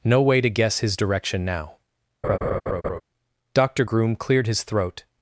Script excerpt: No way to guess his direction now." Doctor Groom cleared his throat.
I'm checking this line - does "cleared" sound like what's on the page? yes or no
yes